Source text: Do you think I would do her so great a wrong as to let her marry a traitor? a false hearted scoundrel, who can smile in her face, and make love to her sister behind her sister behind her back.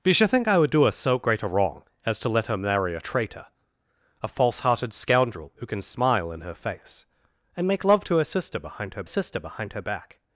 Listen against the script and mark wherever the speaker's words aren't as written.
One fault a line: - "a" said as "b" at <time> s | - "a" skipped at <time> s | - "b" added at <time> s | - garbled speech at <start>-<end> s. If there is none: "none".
none